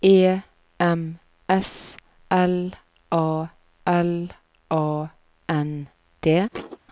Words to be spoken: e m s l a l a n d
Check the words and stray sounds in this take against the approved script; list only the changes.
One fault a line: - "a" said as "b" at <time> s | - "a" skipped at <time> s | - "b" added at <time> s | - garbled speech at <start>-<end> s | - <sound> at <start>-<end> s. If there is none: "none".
- thud at 6.5-6.8 s